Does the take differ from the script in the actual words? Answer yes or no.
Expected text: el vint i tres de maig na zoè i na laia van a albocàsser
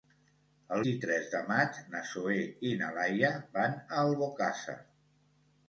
yes